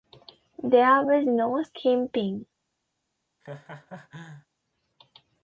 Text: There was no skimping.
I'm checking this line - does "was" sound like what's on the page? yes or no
yes